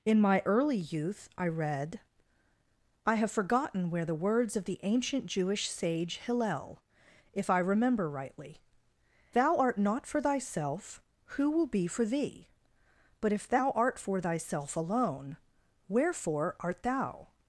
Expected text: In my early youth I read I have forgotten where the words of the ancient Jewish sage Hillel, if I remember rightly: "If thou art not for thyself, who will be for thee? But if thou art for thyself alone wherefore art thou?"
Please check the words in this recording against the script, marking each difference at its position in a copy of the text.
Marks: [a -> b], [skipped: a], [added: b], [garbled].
In my early youth I read I have forgotten where the words of the ancient Jewish sage Hillel, if I remember rightly: [skipped: "If] thou art not for thyself, who will be for thee? But if thou art for thyself alone wherefore art thou?"